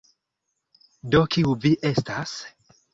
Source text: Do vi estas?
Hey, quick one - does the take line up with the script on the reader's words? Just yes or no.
no